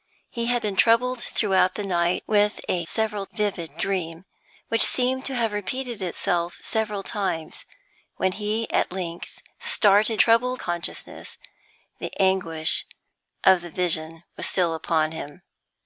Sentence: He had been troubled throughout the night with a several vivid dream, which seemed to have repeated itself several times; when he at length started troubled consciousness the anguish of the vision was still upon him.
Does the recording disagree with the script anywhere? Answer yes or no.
no